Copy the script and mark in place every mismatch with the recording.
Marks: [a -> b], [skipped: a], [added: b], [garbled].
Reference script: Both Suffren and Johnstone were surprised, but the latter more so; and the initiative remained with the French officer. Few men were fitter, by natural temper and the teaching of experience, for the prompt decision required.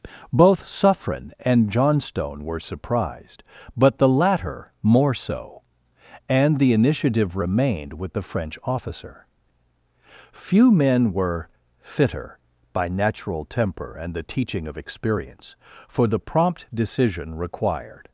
Both Suffren and Johnstone were surprised, but the latter more so; and the initiative remained with the French officer. Few men were fitter, by natural temper and the teaching of experience, for the prompt decision required.